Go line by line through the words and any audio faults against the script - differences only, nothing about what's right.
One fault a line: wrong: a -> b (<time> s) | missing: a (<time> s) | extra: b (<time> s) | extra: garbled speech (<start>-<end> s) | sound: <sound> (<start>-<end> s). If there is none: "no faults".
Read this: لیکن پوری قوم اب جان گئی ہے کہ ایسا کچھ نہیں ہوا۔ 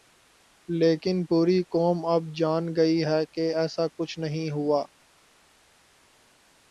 no faults